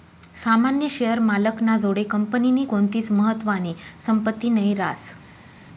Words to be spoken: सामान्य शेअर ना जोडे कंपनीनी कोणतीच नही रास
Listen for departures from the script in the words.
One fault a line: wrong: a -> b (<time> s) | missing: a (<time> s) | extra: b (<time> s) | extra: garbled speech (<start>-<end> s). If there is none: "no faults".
extra: मालक (1.2 s)
extra: महत्वानी संपत्ती (3.1 s)